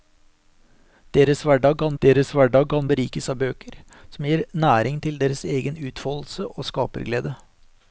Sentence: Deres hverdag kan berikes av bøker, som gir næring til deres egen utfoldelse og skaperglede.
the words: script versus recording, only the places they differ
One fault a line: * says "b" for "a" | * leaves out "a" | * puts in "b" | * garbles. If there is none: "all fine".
* puts in "deres hverdag kan"